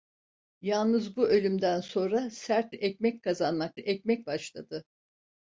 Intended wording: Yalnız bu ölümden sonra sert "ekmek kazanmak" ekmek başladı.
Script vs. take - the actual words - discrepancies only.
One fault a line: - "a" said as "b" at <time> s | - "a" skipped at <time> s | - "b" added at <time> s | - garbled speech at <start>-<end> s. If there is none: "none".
none